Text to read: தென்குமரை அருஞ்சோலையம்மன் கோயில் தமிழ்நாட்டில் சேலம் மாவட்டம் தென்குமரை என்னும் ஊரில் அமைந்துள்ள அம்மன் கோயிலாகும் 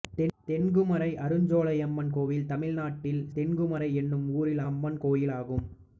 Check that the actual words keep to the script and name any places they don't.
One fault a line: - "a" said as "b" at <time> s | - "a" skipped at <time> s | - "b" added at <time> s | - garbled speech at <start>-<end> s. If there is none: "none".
- "சேலம் மாவட்டம்" skipped at 3.2 s
- "அமைந்துள்ள" skipped at 4.6 s